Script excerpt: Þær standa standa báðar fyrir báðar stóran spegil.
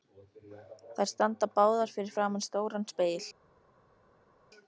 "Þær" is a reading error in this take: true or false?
false